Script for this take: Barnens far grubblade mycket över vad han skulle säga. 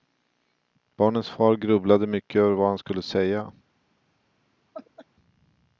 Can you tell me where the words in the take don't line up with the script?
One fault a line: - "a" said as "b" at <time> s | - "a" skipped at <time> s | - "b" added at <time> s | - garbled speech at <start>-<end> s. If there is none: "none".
none